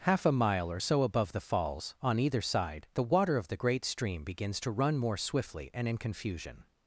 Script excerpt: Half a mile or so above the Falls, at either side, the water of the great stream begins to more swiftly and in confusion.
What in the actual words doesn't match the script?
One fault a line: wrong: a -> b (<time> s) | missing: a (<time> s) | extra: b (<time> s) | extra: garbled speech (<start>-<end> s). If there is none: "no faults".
wrong: at -> on (2.0 s)
extra: run (4.7 s)